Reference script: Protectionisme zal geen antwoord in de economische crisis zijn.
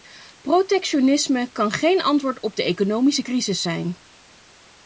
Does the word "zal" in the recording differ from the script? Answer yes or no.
yes